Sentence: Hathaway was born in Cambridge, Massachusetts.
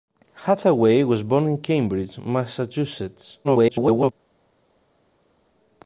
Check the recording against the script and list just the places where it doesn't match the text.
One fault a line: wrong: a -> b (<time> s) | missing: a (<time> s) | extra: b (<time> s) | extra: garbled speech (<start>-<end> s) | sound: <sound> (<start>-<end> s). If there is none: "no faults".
extra: garbled speech (3.4-4.1 s)